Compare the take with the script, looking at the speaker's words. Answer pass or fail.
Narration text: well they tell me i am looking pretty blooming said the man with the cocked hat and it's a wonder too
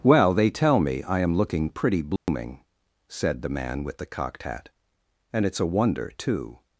pass